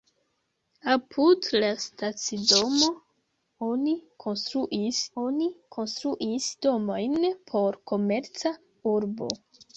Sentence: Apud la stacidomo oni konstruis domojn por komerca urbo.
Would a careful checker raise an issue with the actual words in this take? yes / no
yes